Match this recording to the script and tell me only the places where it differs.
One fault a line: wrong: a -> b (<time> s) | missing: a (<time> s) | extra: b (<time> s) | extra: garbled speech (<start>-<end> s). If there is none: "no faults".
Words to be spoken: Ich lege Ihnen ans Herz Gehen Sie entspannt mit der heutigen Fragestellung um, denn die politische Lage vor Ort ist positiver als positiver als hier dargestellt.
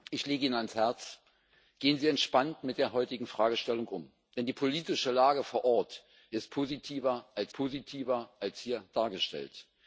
no faults